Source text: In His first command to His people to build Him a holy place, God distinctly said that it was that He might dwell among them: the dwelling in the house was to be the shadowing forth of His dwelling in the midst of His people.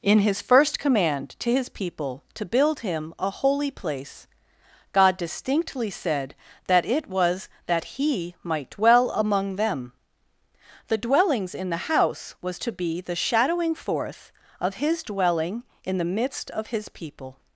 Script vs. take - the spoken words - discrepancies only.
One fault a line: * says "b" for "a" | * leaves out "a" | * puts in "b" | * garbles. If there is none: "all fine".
* says "dwellings" for "dwelling"